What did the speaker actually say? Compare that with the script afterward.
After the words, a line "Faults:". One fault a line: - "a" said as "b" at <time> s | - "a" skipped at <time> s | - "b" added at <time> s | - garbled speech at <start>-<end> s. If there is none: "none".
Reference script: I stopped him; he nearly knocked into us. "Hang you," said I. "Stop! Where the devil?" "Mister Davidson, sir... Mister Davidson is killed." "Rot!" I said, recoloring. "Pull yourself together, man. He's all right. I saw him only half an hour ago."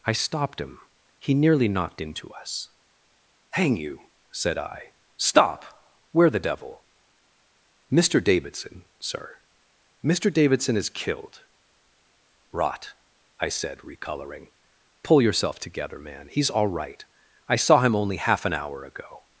I stopped him; he nearly knocked into us. "Hang you," said I. "Stop! Where the devil?" "Mister Davidson, sir... Mister Davidson is killed." "Rot!" I said, recoloring. "Pull yourself together, man. He's all right. I saw him only half an hour ago."
Faults:
none